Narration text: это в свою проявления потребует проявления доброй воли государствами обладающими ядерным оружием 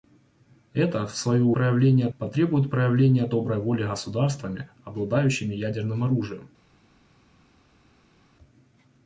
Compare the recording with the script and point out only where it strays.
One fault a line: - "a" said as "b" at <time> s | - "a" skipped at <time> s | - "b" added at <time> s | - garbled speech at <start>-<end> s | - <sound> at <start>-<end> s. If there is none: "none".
none